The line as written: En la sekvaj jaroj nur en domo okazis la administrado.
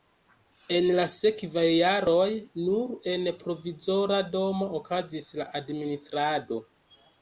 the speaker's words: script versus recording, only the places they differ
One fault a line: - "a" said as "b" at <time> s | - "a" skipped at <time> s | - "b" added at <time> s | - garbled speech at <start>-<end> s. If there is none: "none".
- "provizora" added at 3.5 s